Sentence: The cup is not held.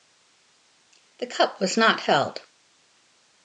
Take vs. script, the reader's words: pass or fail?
fail